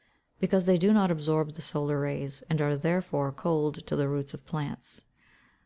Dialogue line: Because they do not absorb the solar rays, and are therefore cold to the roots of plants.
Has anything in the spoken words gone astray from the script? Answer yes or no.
no